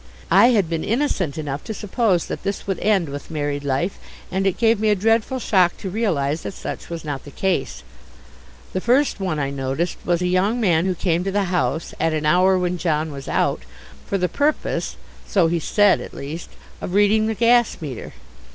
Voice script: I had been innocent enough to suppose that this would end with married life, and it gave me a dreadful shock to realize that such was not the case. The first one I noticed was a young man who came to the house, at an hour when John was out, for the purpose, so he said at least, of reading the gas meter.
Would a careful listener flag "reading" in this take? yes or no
no